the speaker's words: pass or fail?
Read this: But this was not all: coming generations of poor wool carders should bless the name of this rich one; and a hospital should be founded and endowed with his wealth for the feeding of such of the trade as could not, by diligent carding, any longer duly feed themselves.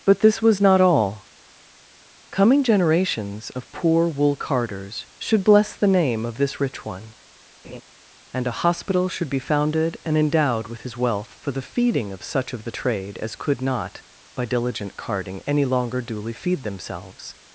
pass